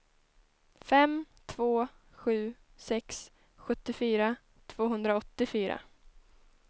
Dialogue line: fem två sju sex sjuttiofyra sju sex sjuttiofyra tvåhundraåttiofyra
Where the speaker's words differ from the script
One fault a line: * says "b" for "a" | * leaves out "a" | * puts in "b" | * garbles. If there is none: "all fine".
* leaves out "sju sex sjuttiofyra"